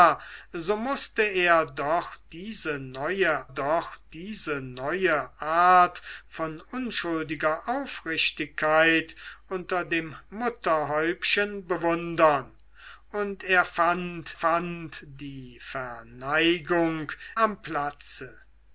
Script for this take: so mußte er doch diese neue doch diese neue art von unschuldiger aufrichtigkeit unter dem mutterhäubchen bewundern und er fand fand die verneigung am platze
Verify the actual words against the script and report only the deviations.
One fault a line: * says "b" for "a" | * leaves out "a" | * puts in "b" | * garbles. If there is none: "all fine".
all fine